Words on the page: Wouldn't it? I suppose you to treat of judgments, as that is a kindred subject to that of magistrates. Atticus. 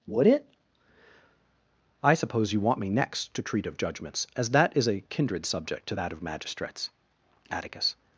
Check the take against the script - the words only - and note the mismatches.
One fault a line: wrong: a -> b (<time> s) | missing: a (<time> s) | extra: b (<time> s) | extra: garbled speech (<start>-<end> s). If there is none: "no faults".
wrong: Wouldn't -> Would (0.1 s)
extra: want me next (2.6 s)